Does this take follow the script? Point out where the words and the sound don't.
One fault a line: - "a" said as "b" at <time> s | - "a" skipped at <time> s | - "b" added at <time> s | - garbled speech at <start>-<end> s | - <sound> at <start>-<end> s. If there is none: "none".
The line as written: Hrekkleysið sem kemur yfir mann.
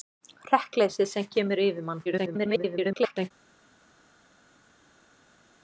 - garbled speech at 2.0-3.3 s